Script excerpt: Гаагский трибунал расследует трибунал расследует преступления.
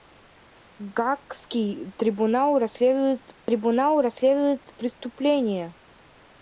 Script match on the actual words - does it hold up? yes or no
yes